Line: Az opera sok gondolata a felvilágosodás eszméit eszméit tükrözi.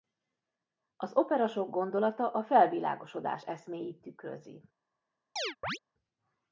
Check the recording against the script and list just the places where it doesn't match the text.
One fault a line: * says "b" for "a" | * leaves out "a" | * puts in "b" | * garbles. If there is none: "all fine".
* leaves out "eszméit"